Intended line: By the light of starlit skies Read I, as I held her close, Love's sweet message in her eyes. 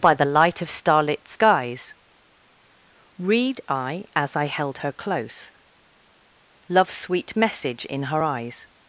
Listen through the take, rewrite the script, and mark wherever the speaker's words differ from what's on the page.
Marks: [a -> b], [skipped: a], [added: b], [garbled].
By the light of starlit skies Read I, as I held her close, Love's sweet message in her eyes.